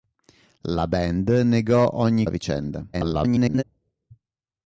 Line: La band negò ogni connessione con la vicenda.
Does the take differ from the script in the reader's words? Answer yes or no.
yes